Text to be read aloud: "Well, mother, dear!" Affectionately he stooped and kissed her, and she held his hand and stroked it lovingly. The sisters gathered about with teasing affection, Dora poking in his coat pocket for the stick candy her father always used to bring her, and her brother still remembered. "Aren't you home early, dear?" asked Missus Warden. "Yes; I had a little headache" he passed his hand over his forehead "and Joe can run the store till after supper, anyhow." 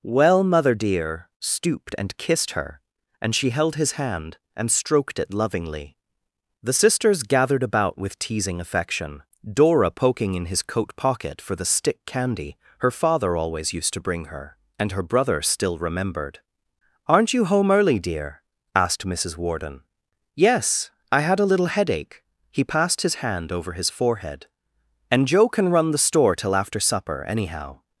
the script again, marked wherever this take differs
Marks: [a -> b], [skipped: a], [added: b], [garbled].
"Well, mother, dear!" [skipped: Affectionately he] stooped and kissed her, and she held his hand and stroked it lovingly. The sisters gathered about with teasing affection, Dora poking in his coat pocket for the stick candy her father always used to bring her, and her brother still remembered. "Aren't you home early, dear?" asked Missus Warden. "Yes; I had a little headache" he passed his hand over his forehead "and Joe can run the store till after supper, anyhow."